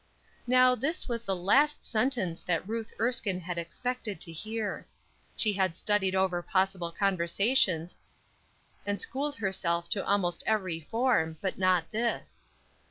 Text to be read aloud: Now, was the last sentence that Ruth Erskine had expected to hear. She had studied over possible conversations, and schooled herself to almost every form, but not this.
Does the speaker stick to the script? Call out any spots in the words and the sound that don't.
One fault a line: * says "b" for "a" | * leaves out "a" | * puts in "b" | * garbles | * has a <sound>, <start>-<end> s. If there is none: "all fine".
* puts in "this"